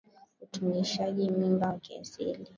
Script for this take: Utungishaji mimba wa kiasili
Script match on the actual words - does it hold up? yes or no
yes